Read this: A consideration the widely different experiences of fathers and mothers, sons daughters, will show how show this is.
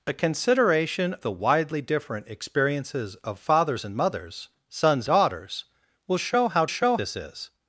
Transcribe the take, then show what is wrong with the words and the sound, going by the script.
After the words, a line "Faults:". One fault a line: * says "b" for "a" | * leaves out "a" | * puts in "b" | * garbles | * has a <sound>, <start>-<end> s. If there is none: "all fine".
A consideration the widely different experiences of fathers and mothers, sons daughters, will show how show this is.
Faults:
all fine